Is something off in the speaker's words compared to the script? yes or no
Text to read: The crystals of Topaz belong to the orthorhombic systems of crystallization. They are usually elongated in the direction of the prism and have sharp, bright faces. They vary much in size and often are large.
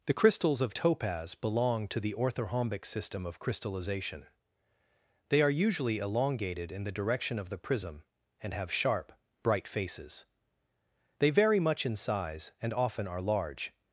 yes